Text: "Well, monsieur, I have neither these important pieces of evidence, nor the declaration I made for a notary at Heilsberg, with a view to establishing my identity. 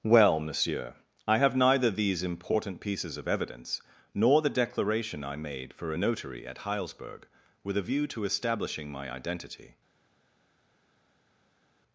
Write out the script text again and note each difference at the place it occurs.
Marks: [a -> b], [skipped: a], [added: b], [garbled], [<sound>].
"Well, monsieur, I have neither these important pieces of evidence, nor the declaration I made for a notary at Heilsberg, with a view to establishing my identity.